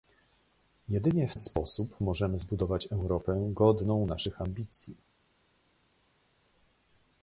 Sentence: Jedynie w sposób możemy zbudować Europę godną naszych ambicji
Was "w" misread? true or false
false